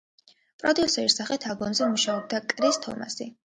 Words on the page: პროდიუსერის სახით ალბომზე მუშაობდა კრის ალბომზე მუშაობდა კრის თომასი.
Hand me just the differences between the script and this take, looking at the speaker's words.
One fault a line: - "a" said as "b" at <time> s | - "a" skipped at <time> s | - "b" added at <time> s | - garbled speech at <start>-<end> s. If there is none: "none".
- "ალბომზე მუშაობდა კრის" skipped at 2.8 s